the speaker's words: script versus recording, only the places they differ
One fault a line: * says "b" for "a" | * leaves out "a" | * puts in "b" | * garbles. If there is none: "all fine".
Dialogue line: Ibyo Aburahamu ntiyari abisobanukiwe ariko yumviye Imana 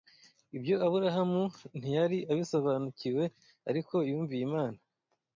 all fine